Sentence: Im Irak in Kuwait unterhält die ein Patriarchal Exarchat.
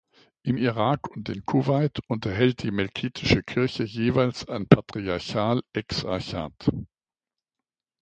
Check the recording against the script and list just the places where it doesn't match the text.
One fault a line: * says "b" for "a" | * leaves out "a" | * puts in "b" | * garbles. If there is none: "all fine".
* puts in "und"
* puts in "melkitische Kirche jeweils"